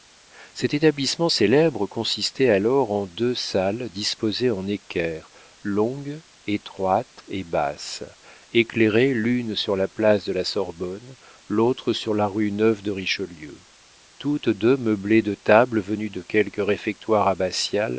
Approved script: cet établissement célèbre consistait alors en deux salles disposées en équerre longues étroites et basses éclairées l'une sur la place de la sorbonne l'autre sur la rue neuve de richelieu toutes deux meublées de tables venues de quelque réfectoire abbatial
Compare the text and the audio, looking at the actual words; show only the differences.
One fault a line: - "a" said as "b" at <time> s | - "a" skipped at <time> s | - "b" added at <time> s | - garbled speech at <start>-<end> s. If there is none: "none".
none